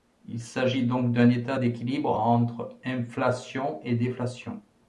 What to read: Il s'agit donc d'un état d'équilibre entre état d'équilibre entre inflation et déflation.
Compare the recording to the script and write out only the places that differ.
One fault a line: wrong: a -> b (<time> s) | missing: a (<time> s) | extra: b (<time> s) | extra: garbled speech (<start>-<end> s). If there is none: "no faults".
missing: état d'équilibre entre (2.8 s)